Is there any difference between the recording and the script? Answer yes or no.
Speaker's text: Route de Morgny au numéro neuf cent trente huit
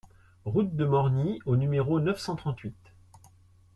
no